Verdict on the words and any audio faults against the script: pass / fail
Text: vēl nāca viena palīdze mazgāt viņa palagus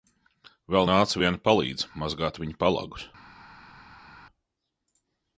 pass